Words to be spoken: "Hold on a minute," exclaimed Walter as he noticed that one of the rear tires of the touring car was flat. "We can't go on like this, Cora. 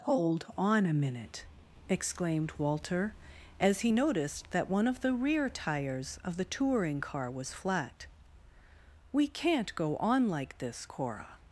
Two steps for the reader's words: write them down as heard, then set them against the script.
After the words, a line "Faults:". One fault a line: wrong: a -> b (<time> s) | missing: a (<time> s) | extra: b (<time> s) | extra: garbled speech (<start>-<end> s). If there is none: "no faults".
"Hold on a minute," exclaimed Walter as he noticed that one of the rear tires of the touring car was flat. "We can't go on like this, Cora.
Faults:
no faults